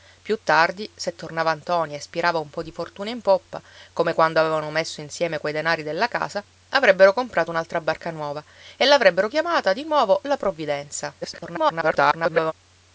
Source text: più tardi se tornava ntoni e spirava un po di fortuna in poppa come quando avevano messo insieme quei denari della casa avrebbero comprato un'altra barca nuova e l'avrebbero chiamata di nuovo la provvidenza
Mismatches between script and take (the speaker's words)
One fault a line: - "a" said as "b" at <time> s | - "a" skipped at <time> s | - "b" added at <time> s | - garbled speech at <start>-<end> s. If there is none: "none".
- garbled speech at 11.2-12.5 s